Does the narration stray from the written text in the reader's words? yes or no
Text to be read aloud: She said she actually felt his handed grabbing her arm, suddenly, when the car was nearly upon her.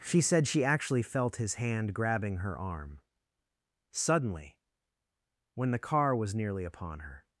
yes